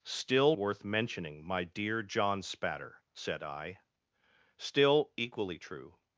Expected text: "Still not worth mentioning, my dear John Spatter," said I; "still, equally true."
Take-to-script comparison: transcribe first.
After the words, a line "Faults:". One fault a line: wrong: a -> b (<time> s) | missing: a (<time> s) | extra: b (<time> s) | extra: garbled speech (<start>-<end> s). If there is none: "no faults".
"Still worth mentioning, my dear John Spatter," said I; "still, equally true."
Faults:
missing: not (0.6 s)